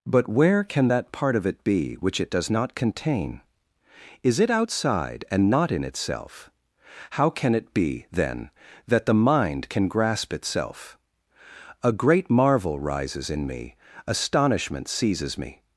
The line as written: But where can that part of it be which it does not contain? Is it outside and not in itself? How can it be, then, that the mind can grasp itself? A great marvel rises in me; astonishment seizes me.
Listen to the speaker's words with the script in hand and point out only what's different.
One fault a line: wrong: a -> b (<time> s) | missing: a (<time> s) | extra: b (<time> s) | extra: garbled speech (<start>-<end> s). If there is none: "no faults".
no faults